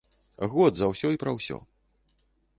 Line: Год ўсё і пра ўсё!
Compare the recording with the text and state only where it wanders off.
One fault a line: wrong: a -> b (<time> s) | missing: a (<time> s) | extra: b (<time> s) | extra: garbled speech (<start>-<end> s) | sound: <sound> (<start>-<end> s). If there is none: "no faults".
extra: за (0.8 s)